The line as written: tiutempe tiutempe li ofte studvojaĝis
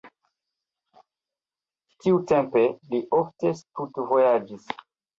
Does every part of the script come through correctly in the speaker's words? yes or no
no